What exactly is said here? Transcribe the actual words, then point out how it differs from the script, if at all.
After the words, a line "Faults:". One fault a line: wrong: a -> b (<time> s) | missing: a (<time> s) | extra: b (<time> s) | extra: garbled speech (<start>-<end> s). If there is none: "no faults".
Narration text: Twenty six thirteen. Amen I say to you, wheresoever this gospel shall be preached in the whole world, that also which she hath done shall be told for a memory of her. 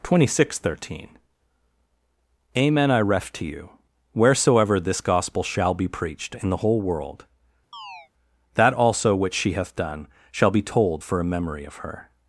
Twenty six thirteen. Amen I ref to you, wheresoever this gospel shall be preached in the whole world, that also which she hath done shall be told for a memory of her.
Faults:
wrong: say -> ref (3.0 s)